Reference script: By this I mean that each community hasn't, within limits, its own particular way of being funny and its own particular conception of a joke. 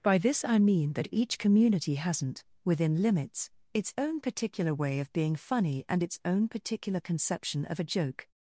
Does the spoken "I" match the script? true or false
true